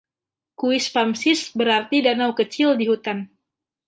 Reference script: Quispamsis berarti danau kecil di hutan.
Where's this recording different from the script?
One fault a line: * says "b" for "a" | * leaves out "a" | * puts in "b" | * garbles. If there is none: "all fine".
all fine